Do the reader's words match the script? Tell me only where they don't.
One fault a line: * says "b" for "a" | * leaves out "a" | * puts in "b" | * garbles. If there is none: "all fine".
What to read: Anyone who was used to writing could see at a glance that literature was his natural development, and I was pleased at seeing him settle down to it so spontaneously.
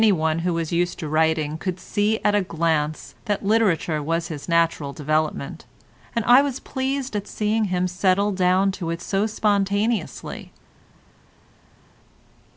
all fine